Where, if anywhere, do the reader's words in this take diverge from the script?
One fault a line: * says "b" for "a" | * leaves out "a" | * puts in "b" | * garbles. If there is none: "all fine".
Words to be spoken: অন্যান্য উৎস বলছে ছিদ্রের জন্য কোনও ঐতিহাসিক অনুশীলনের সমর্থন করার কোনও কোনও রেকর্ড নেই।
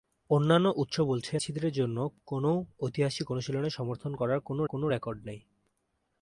all fine